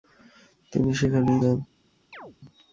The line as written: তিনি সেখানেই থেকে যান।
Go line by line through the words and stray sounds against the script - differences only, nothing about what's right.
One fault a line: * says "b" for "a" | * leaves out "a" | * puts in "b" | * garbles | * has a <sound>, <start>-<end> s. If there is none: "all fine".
* leaves out "থেকে"
* has a chirp, 2.1-2.4 s